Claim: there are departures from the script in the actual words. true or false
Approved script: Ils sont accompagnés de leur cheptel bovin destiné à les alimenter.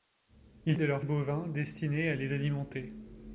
true